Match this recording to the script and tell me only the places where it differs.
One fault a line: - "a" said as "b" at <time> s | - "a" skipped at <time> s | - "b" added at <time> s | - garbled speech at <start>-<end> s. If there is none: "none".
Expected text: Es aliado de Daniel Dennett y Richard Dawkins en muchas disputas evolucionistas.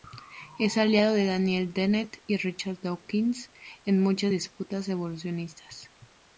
none